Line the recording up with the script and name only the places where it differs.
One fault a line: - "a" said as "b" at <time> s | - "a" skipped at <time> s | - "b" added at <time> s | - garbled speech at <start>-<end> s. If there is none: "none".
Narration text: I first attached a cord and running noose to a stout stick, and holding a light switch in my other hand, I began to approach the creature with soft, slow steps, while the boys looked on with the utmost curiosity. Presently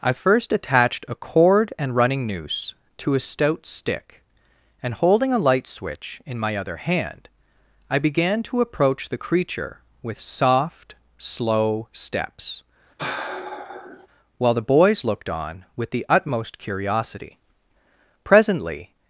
none